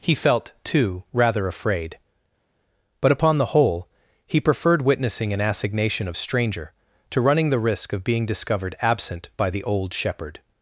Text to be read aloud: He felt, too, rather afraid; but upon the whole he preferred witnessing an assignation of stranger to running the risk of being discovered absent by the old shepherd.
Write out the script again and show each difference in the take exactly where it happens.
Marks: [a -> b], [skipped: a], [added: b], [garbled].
He felt, too, rather afraid; but upon the whole he preferred witnessing an assignation of stranger to running the risk of being discovered absent by the old shepherd.